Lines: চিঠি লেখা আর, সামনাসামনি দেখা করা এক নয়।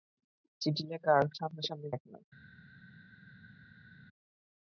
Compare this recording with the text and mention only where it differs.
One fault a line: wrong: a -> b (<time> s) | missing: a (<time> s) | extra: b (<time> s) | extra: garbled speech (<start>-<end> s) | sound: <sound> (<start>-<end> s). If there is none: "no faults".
missing: দেখা করা (1.9 s)